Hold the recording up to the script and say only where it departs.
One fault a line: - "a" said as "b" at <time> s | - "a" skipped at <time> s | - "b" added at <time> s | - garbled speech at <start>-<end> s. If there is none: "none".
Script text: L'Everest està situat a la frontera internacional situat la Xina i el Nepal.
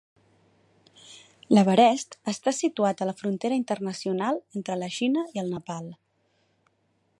- "situat" said as "entre" at 4.6 s